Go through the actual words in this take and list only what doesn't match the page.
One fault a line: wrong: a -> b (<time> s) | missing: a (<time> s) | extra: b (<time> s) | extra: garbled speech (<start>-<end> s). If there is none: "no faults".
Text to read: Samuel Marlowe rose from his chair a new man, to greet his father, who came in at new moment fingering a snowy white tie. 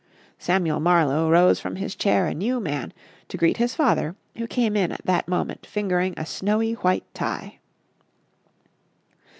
wrong: new -> that (5.0 s)